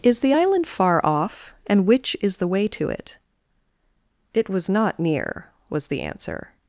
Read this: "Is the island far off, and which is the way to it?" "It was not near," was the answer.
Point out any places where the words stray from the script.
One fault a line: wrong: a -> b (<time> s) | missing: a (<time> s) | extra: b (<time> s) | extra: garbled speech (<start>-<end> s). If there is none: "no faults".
no faults